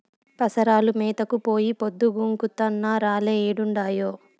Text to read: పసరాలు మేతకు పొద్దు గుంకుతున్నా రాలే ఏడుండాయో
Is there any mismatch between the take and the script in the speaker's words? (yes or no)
yes